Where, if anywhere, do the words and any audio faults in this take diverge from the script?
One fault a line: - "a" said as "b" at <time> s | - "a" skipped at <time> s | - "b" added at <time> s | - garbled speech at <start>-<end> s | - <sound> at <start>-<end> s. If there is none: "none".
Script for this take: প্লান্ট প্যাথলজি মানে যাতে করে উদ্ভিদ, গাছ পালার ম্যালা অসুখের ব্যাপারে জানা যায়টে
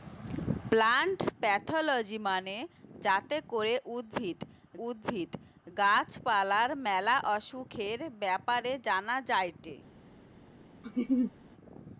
- "উদ্ভিদ" added at 4.9 s
- laugh at 10.8-11.3 s